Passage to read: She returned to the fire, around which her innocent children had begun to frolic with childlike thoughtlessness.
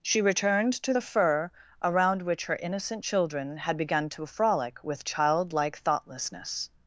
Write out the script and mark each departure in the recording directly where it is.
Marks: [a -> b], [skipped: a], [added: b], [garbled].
She returned to the [fire, -> fur] around which her innocent children had begun to frolic with childlike thoughtlessness.